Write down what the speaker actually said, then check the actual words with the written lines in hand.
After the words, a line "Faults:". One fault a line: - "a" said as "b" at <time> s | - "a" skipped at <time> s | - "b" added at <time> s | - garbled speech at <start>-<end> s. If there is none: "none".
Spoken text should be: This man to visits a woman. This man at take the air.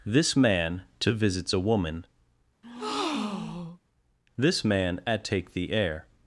This man to visits a woman. This man at take the air.
Faults:
none